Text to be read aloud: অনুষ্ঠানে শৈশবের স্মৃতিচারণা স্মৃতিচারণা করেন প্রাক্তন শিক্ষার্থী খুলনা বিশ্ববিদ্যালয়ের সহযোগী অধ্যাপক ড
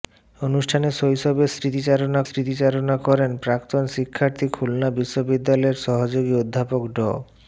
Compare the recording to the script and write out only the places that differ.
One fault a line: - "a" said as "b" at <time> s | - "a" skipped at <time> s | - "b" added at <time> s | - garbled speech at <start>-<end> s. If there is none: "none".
none